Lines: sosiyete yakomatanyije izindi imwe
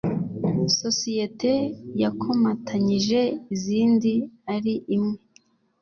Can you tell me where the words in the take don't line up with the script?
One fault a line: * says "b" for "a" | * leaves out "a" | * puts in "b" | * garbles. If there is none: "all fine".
* puts in "ari"